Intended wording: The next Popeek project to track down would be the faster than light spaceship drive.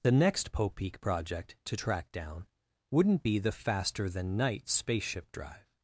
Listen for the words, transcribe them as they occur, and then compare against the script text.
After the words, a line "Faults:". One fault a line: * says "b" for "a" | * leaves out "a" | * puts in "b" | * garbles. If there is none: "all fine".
The next Popeek project to track down wouldn't be the faster than night spaceship drive.
Faults:
* says "wouldn't" for "would"
* says "night" for "light"